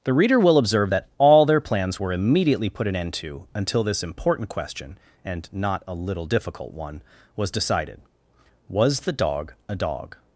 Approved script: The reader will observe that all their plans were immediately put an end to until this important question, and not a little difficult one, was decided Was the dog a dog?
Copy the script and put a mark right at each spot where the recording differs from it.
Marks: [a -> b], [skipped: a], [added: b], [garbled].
The reader will observe that all their plans were immediately put an end to until this important question, and not a little difficult one, was decided Was the dog a dog?